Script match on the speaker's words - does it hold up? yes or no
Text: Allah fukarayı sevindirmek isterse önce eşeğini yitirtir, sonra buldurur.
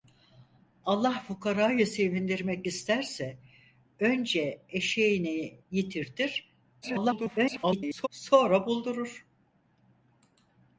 no